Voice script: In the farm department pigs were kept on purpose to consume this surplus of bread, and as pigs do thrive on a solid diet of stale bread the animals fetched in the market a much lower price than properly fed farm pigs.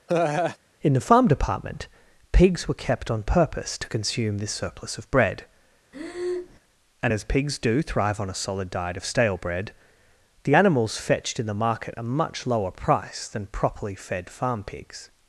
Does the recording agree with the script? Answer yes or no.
yes